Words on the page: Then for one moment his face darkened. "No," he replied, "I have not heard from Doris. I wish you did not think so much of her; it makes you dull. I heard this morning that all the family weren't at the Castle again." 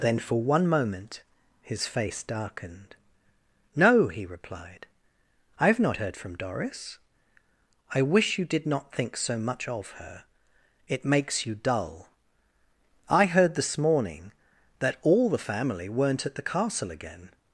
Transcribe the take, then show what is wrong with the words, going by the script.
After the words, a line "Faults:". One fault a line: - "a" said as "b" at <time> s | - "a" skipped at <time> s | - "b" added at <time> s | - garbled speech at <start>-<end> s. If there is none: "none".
Then for one moment his face darkened. "No," he replied, "I have not heard from Doris. I wish you did not think so much of her; it makes you dull. I heard this morning that all the family weren't at the Castle again."
Faults:
none